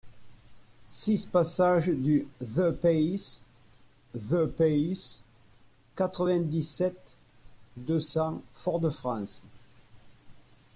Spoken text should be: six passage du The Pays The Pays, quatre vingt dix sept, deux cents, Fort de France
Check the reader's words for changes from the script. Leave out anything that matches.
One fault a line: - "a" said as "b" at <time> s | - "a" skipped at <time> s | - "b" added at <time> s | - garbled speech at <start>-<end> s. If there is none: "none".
none